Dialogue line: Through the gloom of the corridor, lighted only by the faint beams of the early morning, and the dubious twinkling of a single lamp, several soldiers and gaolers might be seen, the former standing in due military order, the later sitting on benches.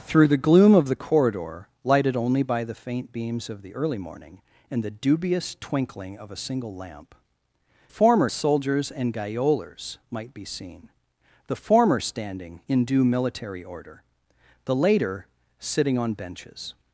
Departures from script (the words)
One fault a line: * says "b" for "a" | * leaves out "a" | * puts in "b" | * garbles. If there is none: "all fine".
* says "former" for "several"